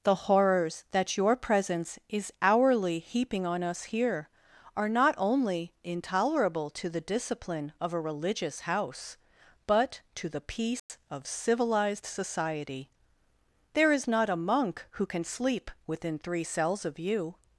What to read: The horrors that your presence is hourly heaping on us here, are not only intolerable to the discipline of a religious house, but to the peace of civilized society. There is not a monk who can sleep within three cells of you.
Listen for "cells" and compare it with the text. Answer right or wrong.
right